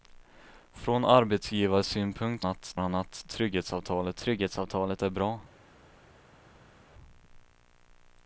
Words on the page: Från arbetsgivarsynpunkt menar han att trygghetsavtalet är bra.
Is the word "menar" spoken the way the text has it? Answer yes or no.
no